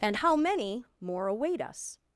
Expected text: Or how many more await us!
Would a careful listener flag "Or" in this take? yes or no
yes